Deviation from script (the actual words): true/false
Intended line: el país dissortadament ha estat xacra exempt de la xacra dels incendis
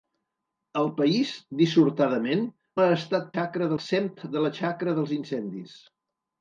false